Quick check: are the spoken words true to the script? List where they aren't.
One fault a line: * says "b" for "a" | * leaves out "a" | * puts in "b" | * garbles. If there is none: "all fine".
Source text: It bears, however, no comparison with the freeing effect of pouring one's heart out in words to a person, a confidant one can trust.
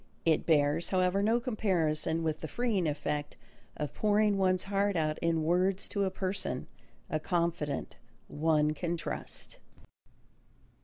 all fine